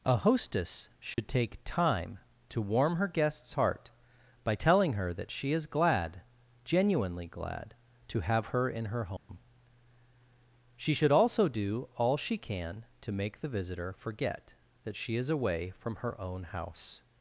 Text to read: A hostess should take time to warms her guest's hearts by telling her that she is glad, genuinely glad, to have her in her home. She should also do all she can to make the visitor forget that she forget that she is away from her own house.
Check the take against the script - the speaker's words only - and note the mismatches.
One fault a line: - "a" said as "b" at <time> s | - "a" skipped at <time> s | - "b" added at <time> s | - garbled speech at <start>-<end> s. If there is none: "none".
- "warms" said as "warm" at 2.6 s
- "hearts" said as "heart" at 3.5 s
- "forget that she" skipped at 15.1 s